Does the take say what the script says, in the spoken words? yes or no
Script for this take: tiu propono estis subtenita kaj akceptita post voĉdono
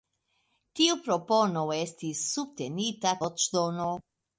no